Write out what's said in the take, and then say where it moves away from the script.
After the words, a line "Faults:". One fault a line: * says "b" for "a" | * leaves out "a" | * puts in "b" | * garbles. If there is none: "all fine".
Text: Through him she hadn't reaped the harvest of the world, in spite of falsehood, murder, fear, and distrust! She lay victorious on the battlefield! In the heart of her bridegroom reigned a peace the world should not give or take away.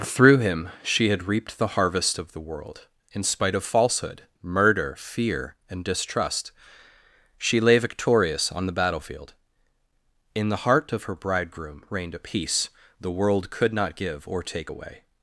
Through him she had reaped the harvest of the world, in spite of falsehood, murder, fear, and distrust! She lay victorious on the battlefield! In the heart of her bridegroom reigned a peace the world could not give or take away.
Faults:
* says "had" for "hadn't"
* says "could" for "should"